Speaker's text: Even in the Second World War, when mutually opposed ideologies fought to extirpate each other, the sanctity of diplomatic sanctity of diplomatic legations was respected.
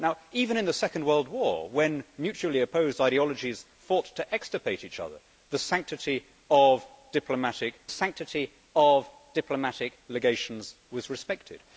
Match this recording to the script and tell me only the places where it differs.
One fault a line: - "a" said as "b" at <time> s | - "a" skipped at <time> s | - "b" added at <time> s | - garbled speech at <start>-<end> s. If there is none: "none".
none